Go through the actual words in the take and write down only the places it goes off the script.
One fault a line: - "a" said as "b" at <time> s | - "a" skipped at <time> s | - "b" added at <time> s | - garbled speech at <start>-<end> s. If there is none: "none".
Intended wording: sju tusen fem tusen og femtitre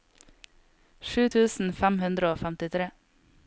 - "tusen" said as "hundre" at 2.1 s